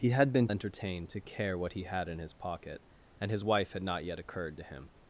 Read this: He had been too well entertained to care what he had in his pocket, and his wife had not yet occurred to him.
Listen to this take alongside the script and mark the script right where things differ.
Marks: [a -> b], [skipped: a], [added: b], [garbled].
He had been [skipped: too well] entertained to care what he had in his pocket, and his wife had not yet occurred to him.